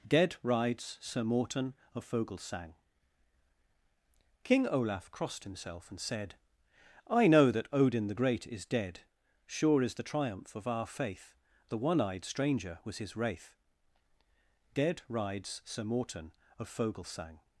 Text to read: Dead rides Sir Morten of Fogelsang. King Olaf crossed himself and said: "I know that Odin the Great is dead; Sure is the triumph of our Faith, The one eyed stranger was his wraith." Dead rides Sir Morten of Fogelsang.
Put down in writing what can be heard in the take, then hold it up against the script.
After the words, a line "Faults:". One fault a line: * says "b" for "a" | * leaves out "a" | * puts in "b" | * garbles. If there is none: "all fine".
Dead rides Sir Morten of Fogelsang. King Olaf crossed himself and said: "I know that Odin the Great is dead; Sure is the triumph of our Faith, The one eyed stranger was his wraith." Dead rides Sir Morten of Fogelsang.
Faults:
all fine